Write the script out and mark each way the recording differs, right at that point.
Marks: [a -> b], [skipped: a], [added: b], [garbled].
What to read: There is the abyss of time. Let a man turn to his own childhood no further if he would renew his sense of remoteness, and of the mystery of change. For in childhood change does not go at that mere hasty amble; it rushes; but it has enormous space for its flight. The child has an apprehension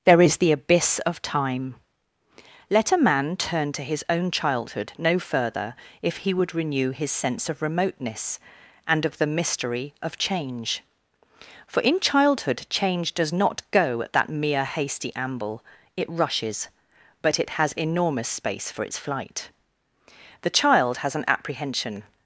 There is the abyss of time. Let a man turn to his own childhood no further if he would renew his sense of remoteness, and of the mystery of change. For in childhood change does not go at that mere hasty amble; it rushes; but it has enormous space for its flight. The child has an apprehension